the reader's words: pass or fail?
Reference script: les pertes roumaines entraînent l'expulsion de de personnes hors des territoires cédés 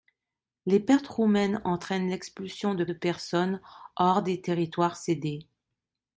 pass